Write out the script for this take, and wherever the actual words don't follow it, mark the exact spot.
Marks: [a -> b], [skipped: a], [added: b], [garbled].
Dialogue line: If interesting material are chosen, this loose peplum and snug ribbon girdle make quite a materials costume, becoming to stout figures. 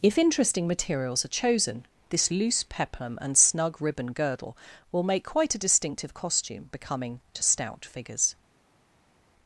If interesting [material -> materials] are chosen, this loose peplum and snug ribbon girdle [added: will] make quite a [materials -> distinctive] costume, becoming to stout figures.